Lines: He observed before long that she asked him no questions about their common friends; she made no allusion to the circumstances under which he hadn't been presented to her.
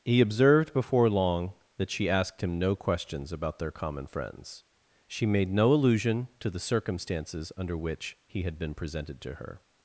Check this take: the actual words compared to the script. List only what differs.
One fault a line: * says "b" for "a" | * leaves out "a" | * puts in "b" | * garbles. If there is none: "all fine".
* says "had" for "hadn't"